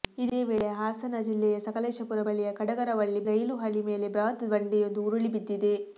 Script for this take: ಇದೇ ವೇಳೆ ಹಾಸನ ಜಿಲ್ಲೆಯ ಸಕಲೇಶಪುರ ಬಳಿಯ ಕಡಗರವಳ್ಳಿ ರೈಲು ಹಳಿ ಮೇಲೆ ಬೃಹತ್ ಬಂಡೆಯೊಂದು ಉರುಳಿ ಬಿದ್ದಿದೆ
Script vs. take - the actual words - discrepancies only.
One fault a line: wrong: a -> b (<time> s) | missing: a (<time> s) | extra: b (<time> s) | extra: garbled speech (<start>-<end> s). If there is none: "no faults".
no faults